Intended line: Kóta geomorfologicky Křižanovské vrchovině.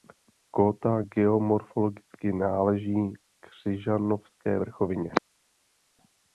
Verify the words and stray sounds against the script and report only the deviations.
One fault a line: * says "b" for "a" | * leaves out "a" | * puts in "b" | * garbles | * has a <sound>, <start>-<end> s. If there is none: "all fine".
* puts in "náleží"